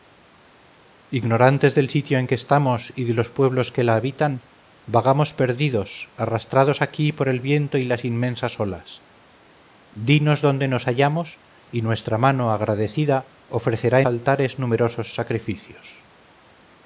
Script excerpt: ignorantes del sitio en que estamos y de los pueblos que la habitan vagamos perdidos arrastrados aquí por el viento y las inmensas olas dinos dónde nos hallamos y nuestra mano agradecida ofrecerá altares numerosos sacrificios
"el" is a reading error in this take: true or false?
false